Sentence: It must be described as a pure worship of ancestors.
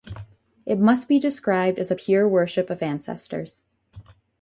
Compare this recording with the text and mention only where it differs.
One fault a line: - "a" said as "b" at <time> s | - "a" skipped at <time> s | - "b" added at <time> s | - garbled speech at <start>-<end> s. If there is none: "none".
none